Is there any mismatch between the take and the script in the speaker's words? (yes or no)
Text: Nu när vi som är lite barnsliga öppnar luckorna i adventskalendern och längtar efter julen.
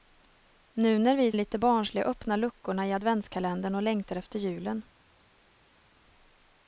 yes